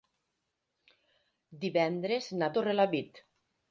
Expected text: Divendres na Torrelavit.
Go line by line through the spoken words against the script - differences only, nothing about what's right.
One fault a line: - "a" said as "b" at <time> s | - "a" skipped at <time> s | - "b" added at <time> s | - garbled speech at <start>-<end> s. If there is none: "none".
none